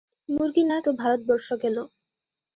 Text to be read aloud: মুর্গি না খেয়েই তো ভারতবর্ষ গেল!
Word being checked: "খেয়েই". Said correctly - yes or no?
no